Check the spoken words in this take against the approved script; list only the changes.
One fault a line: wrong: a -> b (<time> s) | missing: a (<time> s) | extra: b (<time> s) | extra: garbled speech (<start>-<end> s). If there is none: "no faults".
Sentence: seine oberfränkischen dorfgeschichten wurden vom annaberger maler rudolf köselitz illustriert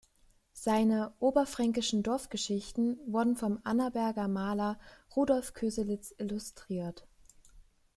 no faults